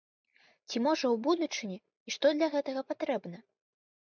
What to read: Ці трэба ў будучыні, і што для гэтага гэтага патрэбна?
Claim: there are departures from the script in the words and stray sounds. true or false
true